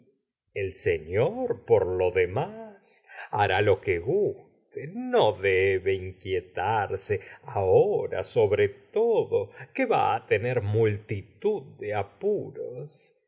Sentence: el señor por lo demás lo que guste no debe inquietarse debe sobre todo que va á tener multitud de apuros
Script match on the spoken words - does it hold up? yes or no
no